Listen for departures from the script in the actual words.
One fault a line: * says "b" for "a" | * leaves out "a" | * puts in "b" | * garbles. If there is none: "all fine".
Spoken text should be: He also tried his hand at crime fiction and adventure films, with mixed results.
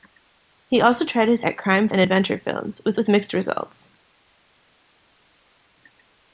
* leaves out "hand"
* leaves out "fiction"
* puts in "with"